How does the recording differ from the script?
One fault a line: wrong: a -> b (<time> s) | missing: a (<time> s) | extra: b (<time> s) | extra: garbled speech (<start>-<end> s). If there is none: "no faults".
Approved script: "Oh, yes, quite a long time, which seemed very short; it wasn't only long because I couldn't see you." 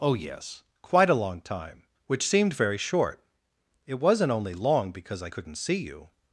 no faults